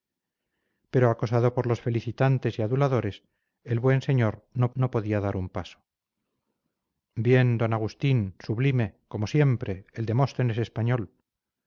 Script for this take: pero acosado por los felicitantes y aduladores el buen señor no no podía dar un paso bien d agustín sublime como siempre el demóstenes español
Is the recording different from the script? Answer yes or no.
no